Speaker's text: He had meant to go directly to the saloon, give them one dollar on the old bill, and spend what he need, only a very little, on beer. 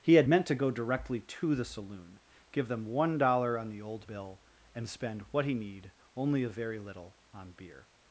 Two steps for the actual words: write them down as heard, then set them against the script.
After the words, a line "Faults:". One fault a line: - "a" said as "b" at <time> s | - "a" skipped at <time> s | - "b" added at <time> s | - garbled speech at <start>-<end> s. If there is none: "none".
He had meant to go directly to the saloon, give them one dollar on the old bill, and spend what he need, only a very little, on beer.
Faults:
none